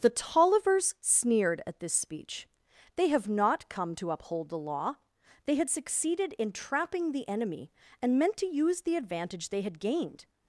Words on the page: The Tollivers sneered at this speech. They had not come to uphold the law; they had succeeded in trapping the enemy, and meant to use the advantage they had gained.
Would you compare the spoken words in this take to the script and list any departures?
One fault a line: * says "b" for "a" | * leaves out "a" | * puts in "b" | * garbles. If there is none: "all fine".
* says "have" for "had"